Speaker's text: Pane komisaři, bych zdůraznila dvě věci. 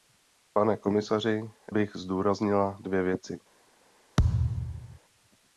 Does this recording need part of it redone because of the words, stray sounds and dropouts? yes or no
yes